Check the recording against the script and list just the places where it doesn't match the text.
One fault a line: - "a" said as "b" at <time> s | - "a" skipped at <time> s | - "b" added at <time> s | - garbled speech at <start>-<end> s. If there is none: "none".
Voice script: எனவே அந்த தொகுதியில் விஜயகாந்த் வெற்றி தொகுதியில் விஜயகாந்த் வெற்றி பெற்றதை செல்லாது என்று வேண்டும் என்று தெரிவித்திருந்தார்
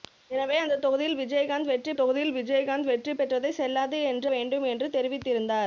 none